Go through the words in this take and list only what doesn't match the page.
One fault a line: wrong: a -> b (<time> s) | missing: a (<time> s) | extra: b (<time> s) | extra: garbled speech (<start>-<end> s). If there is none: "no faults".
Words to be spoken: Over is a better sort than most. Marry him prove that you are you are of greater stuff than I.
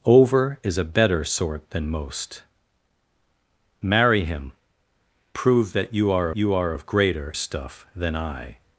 no faults